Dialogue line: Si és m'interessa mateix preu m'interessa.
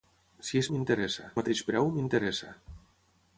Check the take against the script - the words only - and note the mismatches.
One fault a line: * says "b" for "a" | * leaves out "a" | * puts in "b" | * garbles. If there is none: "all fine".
all fine